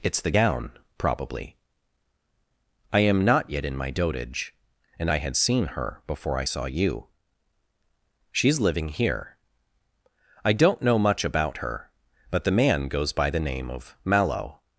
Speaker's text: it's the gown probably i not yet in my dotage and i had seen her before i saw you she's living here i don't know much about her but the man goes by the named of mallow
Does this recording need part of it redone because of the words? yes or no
yes